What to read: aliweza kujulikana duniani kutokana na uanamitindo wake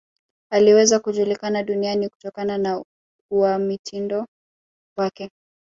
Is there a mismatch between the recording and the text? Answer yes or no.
no